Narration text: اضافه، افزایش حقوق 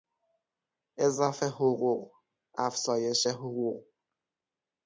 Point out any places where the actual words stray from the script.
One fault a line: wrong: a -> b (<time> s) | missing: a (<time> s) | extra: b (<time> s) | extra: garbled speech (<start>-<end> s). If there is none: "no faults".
extra: حقوق (1.5 s)